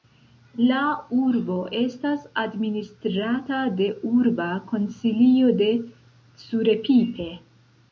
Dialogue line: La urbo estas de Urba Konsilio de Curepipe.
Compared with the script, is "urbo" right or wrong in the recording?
right